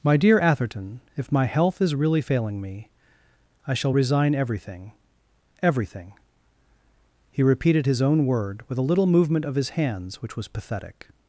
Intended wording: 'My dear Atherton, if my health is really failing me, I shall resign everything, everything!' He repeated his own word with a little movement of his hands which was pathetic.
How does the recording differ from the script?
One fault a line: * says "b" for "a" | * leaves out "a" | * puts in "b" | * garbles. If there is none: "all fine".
all fine